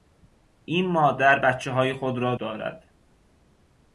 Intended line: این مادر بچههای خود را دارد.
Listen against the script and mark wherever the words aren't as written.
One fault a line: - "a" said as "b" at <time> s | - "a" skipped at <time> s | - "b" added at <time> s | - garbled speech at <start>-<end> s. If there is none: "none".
none